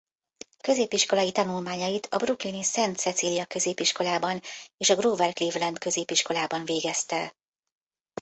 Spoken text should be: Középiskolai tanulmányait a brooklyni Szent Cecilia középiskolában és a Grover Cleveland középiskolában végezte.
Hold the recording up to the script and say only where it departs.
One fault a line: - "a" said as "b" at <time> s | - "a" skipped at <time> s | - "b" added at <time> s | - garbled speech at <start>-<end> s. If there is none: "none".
none